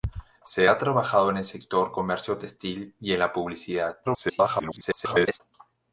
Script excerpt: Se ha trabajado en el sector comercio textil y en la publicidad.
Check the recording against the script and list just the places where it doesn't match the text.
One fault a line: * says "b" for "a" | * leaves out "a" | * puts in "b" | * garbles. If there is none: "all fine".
* garbles